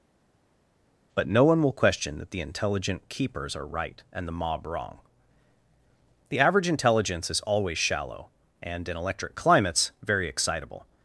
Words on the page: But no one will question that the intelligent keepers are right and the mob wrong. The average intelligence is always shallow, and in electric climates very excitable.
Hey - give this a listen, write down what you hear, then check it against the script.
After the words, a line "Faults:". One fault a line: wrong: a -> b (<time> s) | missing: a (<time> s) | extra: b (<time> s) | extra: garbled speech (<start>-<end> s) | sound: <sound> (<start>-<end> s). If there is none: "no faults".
But no one will question that the intelligent keepers are right and the mob wrong. The average intelligence is always shallow, and in electric climates very excitable.
Faults:
no faults